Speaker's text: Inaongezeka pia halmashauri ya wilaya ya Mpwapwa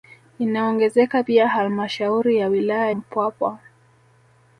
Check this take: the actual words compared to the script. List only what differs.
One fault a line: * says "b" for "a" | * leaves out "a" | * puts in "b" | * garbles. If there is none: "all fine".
* leaves out "ya"